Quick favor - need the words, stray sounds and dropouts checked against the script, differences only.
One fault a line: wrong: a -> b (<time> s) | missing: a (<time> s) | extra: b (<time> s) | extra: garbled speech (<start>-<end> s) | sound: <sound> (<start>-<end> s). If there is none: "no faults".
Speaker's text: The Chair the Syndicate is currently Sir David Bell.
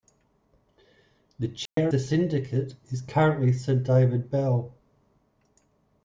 sound: dropout (1.7-1.8 s)